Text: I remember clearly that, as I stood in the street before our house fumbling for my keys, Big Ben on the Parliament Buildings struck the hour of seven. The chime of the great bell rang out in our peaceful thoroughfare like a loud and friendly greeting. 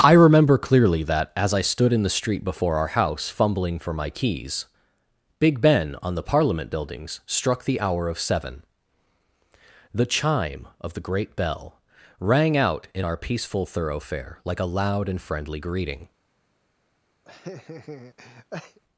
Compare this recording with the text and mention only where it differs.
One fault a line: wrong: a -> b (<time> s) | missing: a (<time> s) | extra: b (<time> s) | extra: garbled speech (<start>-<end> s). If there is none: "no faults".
no faults